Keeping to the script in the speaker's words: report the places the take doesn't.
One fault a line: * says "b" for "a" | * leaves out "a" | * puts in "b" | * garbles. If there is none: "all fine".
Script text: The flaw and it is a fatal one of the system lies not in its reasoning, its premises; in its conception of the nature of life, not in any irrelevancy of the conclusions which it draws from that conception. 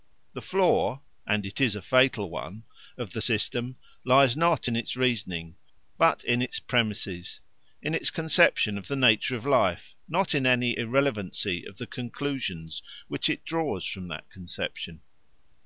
* puts in "but in"